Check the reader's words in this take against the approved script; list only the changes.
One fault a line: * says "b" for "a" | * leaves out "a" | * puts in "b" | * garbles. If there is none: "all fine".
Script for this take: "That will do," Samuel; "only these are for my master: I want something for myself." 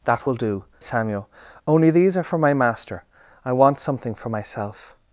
all fine